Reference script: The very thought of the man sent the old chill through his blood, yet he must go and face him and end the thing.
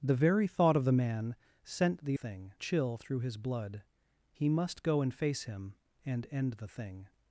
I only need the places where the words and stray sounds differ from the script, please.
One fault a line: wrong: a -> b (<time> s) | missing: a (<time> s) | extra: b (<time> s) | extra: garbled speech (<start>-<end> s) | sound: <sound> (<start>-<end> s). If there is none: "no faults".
wrong: old -> thing (2.1 s)
missing: yet (3.8 s)